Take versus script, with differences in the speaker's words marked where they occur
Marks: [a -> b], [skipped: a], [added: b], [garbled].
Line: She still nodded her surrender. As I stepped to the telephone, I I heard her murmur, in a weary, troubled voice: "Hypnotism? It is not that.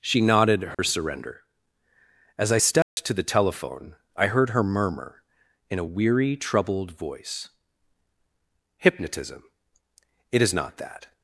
She [skipped: still] nodded her surrender. As I stepped to the telephone, I [skipped: I] heard her murmur, in a weary, troubled voice: "Hypnotism? It is not that.